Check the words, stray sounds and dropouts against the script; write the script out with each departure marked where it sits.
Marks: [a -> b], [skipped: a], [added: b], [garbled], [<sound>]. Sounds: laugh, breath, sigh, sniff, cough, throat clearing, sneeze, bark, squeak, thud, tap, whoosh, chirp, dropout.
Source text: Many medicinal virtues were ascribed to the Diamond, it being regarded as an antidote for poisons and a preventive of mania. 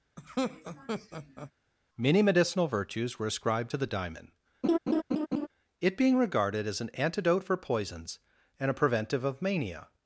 [laugh] Many medicinal virtues were ascribed to the Diamond, [laugh] it being regarded as an antidote for poisons and a preventive of mania.